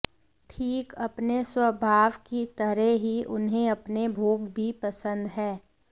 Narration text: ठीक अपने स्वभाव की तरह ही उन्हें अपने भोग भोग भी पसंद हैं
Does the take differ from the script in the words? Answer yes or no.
yes